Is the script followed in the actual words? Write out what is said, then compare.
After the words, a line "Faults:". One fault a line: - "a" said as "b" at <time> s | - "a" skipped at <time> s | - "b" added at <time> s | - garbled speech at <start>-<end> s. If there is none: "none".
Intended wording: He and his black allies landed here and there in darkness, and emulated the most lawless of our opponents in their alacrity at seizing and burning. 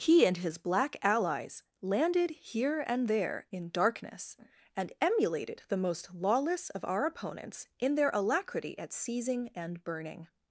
He and his black allies landed here and there in darkness, and emulated the most lawless of our opponents in their alacrity at seizing and burning.
Faults:
none